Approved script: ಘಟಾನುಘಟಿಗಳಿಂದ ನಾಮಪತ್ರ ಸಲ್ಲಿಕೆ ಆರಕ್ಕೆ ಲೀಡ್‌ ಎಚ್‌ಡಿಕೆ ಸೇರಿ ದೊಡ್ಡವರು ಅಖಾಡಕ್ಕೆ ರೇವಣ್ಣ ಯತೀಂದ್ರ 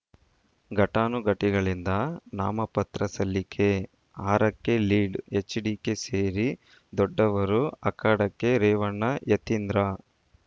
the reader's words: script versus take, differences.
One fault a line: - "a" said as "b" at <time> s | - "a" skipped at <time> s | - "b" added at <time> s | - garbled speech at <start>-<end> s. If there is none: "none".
none